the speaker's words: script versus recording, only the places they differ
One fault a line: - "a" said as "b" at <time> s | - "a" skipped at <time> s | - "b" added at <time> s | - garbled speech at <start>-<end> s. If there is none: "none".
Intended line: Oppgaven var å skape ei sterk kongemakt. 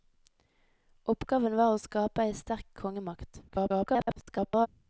- garbled speech at 3.5-4.7 s